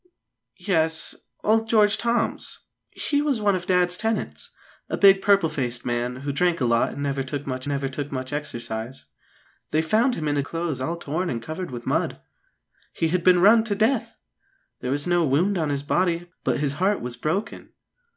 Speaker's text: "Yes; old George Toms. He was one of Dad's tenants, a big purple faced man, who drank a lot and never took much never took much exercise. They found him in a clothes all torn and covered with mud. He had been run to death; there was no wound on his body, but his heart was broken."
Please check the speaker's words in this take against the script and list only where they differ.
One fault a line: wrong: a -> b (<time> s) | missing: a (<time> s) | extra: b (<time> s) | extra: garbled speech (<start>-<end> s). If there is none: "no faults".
no faults